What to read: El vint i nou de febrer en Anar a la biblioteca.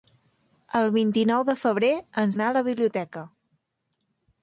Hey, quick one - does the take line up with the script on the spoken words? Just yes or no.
yes